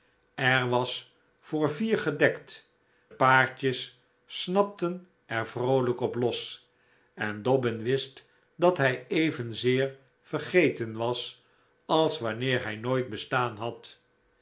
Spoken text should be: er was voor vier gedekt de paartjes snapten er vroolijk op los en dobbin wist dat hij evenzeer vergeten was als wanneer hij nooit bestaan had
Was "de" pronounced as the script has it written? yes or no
no